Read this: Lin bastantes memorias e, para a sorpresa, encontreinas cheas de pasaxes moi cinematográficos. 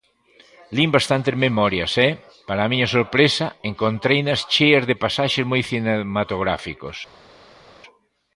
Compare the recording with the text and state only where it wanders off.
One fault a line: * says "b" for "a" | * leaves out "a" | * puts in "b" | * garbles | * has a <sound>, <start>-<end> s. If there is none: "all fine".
* puts in "miña"